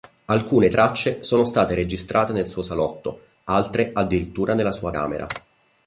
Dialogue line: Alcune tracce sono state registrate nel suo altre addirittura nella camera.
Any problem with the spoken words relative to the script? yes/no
yes